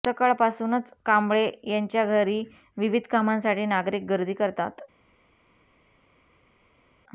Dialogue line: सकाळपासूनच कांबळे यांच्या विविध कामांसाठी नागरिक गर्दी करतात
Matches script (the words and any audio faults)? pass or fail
fail